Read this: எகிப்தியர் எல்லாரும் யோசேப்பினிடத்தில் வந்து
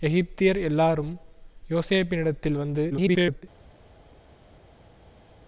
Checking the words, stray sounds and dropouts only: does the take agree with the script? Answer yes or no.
no